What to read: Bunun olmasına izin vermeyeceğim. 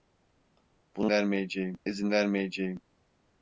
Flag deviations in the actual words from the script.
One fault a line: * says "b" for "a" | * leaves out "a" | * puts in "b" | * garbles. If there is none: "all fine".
* says "vermeyeceğim" for "olmasına"